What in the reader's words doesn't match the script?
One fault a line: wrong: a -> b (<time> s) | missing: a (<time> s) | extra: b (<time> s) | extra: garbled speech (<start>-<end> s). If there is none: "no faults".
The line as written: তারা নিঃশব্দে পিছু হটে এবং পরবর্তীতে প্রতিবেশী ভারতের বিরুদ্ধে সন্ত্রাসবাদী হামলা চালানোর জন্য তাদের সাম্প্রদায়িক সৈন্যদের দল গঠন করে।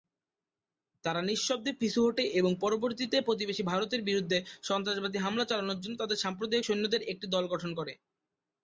extra: একটি (7.1 s)